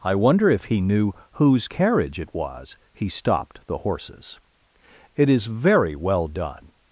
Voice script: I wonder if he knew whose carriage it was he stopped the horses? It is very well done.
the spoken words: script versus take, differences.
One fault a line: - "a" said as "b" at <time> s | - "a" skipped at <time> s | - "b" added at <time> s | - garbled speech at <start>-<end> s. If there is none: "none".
none